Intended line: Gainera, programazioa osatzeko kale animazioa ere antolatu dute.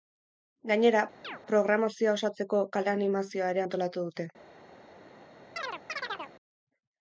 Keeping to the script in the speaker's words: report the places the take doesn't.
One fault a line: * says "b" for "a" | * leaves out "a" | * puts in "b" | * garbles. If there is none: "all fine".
all fine